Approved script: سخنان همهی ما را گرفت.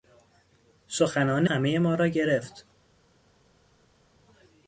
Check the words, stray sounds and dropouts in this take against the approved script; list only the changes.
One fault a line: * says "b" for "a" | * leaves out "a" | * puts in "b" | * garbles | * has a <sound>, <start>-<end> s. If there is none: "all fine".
all fine